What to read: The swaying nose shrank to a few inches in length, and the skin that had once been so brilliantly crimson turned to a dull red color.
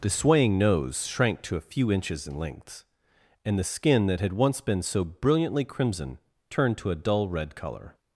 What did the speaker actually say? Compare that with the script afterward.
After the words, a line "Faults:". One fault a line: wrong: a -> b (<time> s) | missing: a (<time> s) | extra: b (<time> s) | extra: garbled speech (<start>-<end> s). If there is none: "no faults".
The swaying nose shrank to a few inches in length, and the skin that had once been so brilliantly crimson turned to a dull red color.
Faults:
no faults